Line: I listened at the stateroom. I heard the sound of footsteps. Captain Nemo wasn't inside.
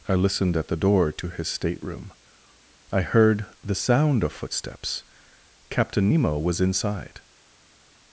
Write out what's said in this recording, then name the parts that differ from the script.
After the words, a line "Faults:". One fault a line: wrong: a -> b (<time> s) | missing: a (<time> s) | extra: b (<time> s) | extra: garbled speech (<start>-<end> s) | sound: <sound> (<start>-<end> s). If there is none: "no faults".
I listened at the door to his stateroom. I heard the sound of footsteps. Captain Nemo was inside.
Faults:
extra: door to his (0.8 s)
wrong: wasn't -> was (6.4 s)